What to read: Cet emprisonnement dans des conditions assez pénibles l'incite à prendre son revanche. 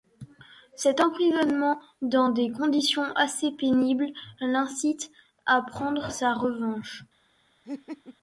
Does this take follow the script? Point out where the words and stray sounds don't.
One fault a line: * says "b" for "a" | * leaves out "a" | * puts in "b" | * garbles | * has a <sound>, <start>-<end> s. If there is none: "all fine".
* says "sa" for "son"
* has a laugh, 7.6-8.2 s